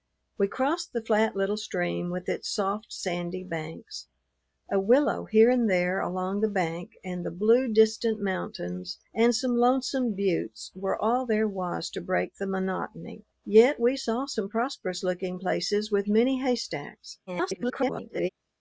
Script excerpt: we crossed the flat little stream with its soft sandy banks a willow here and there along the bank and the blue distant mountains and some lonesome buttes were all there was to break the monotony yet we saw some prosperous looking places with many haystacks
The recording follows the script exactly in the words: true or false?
false